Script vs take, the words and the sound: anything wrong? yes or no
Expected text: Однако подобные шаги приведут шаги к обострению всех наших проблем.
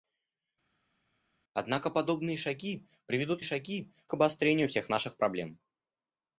no